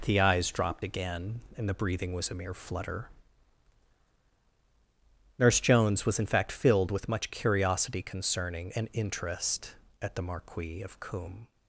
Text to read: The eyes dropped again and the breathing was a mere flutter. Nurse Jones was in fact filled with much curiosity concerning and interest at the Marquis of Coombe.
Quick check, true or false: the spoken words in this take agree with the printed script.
true